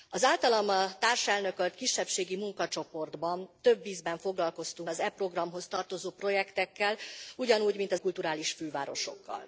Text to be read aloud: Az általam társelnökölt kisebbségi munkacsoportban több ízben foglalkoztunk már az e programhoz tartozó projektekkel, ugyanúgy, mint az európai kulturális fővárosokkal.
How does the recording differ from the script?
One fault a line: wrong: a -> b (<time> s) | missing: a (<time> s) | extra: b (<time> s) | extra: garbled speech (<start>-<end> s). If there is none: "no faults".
missing: már (4.9 s)
missing: európai (8.0 s)